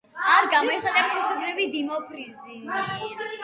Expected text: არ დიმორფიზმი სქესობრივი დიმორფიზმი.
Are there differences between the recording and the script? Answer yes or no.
yes